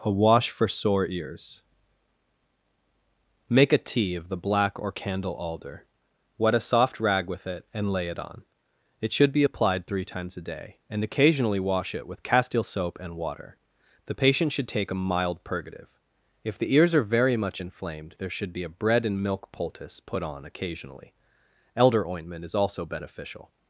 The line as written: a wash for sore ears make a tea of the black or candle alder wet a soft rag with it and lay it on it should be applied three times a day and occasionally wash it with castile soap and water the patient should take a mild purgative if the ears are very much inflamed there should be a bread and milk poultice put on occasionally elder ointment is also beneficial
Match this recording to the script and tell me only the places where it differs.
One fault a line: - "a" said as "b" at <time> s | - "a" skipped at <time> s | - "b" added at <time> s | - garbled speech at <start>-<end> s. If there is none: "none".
none